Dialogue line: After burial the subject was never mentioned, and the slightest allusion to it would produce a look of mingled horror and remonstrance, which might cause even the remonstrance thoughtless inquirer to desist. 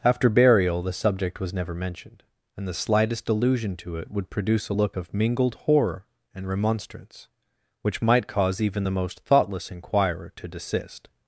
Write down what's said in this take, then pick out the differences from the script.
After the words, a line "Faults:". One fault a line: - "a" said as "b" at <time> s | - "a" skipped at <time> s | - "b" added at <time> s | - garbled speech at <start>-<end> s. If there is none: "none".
After burial the subject was never mentioned, and the slightest allusion to it would produce a look of mingled horror and remonstrance, which might cause even the most thoughtless inquirer to desist.
Faults:
- "remonstrance" said as "most" at 8.9 s